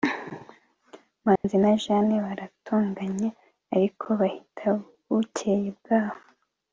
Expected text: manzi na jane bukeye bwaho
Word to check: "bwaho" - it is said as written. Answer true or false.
true